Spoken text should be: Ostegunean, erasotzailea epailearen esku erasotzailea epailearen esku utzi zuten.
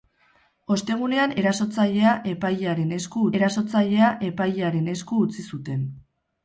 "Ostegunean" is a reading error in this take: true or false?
false